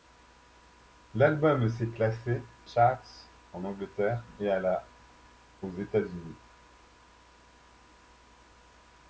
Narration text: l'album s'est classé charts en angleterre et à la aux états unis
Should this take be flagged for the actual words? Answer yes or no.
no